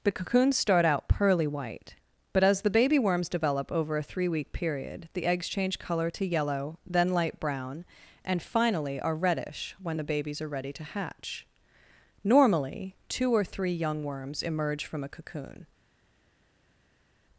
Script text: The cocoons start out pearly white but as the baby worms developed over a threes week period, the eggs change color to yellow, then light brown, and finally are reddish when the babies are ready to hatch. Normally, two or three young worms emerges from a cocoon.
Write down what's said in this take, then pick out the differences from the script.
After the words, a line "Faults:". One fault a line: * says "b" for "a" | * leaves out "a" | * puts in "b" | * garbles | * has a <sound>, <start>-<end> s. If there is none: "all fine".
The cocoons start out pearly white but as the baby worms develop over a three week period, the eggs change color to yellow, then light brown, and finally are reddish when the babies are ready to hatch. Normally, two or three young worms emerge from a cocoon.
Faults:
* says "develop" for "developed"
* says "three" for "threes"
* says "emerge" for "emerges"